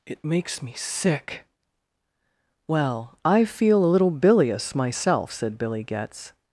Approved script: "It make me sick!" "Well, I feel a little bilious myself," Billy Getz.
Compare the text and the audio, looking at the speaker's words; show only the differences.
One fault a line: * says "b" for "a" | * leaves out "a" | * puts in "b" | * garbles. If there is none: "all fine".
* says "makes" for "make"
* puts in "said"